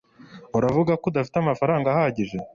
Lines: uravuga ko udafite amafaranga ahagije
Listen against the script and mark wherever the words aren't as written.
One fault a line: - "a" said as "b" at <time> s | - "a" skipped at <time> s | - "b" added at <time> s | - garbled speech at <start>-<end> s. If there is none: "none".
none